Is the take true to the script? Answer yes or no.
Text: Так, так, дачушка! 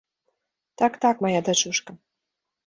no